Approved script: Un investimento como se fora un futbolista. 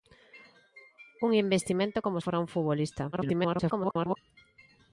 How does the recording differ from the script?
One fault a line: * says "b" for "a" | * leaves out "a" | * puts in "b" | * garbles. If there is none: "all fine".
* leaves out "se"
* garbles